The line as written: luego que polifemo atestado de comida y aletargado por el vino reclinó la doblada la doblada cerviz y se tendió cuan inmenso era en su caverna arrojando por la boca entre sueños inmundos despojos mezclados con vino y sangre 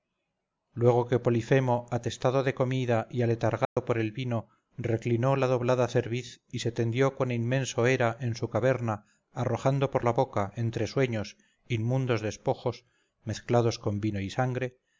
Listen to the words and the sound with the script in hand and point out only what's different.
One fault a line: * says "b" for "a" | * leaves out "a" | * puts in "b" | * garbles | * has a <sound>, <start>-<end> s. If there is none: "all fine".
* has a dropout, 3.6-3.8 s
* leaves out "la doblada"